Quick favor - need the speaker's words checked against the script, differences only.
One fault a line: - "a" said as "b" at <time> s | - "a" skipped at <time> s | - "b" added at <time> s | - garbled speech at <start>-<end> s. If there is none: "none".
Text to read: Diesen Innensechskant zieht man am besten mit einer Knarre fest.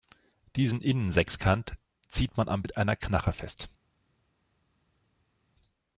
- "besten" skipped at 2.6 s